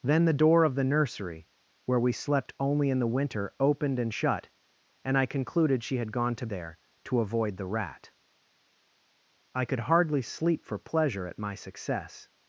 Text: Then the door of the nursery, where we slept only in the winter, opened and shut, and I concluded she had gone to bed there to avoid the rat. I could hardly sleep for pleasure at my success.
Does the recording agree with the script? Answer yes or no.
no